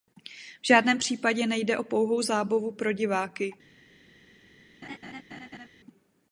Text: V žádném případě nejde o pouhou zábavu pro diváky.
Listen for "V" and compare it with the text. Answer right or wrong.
right